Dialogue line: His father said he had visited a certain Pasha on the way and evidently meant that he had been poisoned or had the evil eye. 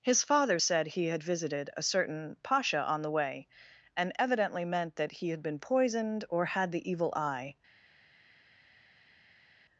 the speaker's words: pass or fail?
pass